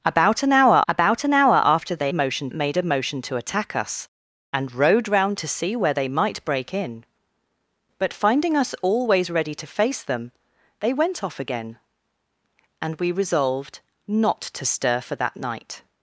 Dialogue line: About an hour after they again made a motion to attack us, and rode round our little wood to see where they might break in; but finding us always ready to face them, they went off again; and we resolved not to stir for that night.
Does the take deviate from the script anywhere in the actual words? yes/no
yes